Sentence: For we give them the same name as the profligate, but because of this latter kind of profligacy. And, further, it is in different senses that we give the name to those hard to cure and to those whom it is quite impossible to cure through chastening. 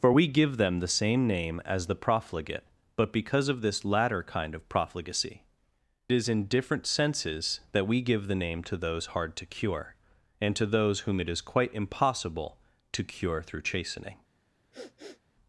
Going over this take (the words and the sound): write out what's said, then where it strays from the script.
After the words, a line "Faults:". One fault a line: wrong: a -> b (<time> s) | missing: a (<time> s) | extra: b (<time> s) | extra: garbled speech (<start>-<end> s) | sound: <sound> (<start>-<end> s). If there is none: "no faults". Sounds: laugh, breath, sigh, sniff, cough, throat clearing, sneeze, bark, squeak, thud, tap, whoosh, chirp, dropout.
For we give them the same name as the profligate, but because of this latter kind of profligacy. Is in different senses that we give the name to those hard to cure and to those whom it is quite impossible to cure through chastening.
Faults:
missing: And further it (5.4 s)
sound: sniff (14.7-15.2 s)